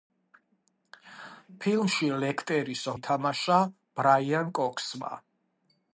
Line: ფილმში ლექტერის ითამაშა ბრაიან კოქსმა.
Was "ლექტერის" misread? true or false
false